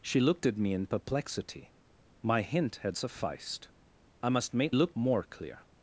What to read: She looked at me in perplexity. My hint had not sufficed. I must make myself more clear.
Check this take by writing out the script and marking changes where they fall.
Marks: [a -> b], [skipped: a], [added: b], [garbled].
She looked at me in perplexity. My hint had [skipped: not] sufficed. I must make [myself -> looked] more clear.